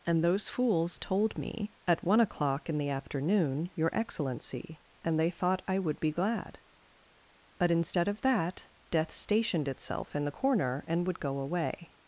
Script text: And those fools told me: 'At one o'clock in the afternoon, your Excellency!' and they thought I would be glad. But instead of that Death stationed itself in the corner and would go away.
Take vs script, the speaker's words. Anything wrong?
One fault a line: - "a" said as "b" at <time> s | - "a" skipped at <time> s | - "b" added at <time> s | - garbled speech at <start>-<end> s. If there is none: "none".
none